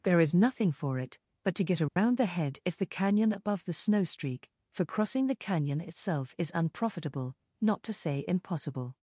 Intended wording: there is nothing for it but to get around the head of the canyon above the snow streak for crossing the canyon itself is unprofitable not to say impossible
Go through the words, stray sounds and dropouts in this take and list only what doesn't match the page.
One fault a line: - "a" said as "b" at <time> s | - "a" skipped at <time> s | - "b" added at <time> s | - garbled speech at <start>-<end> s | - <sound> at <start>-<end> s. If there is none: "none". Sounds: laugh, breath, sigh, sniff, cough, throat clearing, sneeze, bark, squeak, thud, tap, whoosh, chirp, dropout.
- dropout at 1.9-2.0 s
- "of" said as "if" at 2.6 s